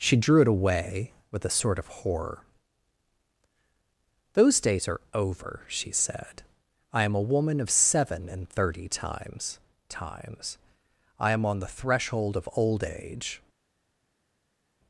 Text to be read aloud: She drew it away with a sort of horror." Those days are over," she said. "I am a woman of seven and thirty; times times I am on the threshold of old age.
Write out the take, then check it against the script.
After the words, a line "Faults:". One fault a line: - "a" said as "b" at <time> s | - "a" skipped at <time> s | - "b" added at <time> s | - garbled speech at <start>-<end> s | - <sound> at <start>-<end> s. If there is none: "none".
She drew it away with a sort of horror." Those days are over," she said. "I am a woman of seven and thirty; times times I am on the threshold of old age.
Faults:
none